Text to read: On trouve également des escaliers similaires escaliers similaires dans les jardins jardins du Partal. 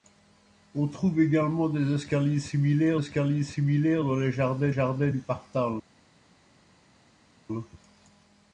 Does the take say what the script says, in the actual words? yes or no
yes